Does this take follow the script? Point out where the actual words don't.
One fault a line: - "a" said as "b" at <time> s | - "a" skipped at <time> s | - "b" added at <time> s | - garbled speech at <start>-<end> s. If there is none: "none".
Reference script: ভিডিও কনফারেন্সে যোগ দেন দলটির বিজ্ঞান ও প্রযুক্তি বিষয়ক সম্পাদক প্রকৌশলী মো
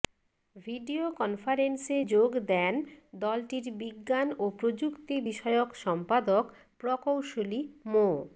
none